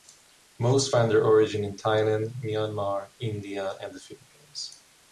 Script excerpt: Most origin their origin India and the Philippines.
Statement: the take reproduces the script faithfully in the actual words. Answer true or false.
false